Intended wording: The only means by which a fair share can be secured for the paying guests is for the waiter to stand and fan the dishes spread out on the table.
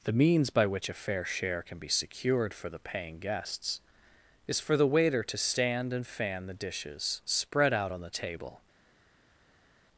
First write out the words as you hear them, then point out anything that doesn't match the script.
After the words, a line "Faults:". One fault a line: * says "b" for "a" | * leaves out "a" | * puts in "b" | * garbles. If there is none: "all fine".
The means by which a fair share can be secured for the paying guests is for the waiter to stand and fan the dishes spread out on the table.
Faults:
* leaves out "only"